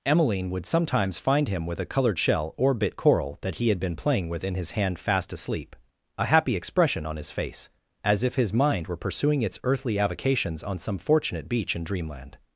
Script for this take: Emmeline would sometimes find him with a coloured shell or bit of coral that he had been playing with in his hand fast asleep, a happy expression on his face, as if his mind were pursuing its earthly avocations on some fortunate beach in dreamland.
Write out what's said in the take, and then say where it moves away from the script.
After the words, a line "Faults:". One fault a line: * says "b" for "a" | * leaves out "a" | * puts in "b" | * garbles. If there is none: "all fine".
Emmeline would sometimes find him with a coloured shell or bit coral that he had been playing with in his hand fast asleep, a happy expression on his face, as if his mind were pursuing its earthly avocations on some fortunate beach in dreamland.
Faults:
* leaves out "of"